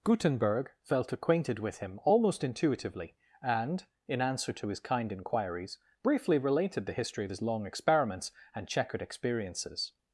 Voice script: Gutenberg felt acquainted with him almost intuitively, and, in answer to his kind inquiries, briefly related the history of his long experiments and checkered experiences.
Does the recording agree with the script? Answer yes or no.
yes